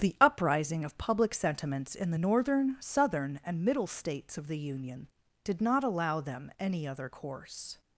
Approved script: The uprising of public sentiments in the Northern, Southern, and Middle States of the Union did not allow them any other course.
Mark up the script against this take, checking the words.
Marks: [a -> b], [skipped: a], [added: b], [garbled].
The uprising of public sentiments in the Northern, Southern, and Middle States of the Union did not allow them any other course.